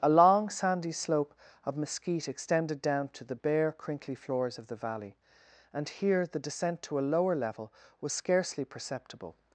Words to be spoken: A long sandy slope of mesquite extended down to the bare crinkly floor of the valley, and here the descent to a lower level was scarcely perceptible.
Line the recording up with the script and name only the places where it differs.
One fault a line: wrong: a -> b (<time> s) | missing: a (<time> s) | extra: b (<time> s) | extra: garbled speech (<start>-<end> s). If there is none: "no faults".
wrong: floor -> floors (4.1 s)